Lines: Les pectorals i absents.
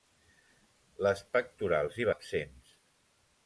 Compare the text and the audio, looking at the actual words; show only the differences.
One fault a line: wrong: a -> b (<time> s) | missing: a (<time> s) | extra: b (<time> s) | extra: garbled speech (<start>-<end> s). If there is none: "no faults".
no faults